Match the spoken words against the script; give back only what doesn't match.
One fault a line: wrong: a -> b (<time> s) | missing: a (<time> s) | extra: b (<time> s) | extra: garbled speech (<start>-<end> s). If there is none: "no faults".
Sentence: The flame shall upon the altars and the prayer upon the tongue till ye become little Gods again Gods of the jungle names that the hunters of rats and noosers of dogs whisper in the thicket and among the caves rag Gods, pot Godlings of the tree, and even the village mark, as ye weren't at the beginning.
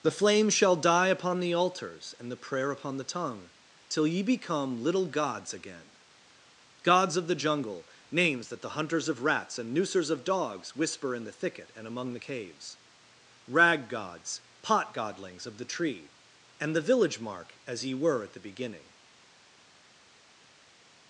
extra: die (0.8 s)
missing: even (16.8 s)
wrong: weren't -> were (17.9 s)